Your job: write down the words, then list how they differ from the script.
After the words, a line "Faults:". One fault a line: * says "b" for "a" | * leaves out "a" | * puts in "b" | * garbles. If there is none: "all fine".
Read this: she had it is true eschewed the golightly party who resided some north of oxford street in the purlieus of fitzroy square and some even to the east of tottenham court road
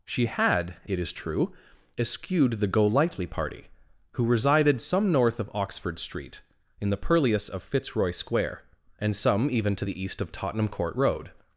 she had it is true eschewed the golightly party who resided some north of oxford street in the purlieus of fitzroy square and some even to the east of tottenham court road
Faults:
all fine